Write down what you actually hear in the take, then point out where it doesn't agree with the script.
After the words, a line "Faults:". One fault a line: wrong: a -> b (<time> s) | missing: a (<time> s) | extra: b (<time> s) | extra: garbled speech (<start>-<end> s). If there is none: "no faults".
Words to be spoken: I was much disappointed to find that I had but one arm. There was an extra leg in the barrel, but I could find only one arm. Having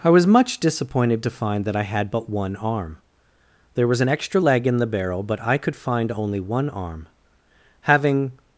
I was much disappointed to find that I had but one arm. There was an extra leg in the barrel, but I could find only one arm. Having
Faults:
no faults